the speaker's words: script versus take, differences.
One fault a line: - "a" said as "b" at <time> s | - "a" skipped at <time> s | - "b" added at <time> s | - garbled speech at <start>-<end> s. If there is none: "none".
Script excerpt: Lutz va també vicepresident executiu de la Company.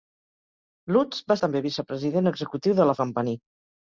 none